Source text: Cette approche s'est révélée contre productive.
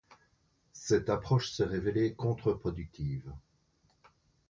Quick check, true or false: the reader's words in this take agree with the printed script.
true